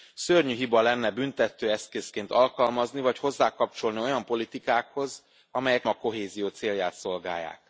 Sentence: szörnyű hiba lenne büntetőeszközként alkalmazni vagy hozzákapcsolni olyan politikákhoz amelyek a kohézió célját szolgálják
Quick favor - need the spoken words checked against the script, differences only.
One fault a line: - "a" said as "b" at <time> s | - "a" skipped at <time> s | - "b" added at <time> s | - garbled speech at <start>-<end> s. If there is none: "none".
none